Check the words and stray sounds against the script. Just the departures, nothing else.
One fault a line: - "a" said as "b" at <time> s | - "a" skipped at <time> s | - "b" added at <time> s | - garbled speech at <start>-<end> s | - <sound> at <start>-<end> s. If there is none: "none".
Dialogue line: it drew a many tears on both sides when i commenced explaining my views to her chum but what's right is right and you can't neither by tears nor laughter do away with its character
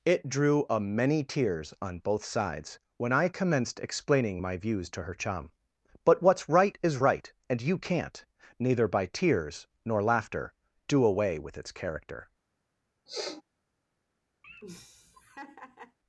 - sniff at 13.1-13.4 s
- laugh at 14.4-16.0 s